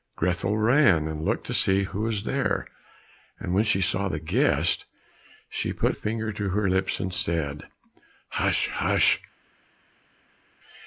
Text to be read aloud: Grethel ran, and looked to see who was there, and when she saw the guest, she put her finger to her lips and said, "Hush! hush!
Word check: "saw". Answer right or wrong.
right